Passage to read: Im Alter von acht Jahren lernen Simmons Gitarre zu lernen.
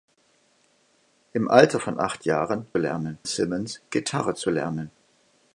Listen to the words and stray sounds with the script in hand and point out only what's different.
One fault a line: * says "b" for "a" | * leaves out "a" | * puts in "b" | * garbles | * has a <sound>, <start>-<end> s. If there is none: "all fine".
all fine